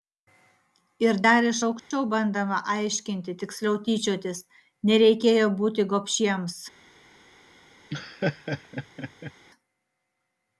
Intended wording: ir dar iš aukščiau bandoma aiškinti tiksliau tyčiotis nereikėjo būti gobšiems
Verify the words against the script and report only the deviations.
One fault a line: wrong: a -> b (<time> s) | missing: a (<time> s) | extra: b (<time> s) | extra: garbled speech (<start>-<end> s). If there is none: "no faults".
no faults